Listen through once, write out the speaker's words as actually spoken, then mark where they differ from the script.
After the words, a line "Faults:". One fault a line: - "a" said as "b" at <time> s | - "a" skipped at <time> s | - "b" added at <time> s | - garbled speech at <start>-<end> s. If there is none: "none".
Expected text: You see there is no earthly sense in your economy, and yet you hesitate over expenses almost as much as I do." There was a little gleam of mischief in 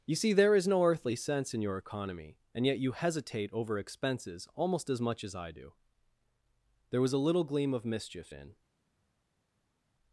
You see there is no earthly sense in your economy, and yet you hesitate over expenses almost as much as I do." There was a little gleam of mischief in
Faults:
none